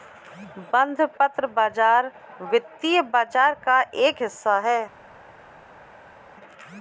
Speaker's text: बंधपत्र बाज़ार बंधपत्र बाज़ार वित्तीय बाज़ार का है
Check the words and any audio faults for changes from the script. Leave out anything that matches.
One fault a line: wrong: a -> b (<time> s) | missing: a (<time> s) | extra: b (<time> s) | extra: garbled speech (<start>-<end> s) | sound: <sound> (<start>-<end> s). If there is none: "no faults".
wrong: बंधपत्र -> वित्तीय (2.4 s)
wrong: वित्तीय बाज़ार का -> का एक हिस्सा (3.6 s)